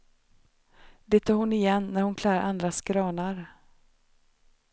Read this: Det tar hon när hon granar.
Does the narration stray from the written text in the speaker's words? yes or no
yes